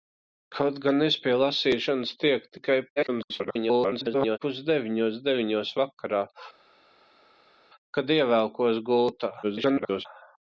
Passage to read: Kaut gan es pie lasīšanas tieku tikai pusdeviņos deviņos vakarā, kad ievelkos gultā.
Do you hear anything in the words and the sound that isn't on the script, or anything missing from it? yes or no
yes